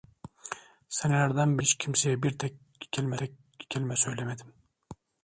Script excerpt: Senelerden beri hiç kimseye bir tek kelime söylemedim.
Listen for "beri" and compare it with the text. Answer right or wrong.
wrong